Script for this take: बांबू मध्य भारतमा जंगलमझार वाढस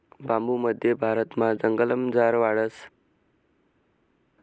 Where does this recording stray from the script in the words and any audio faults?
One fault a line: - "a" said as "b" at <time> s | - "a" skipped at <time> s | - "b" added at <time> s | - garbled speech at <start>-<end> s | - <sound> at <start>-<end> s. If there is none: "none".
none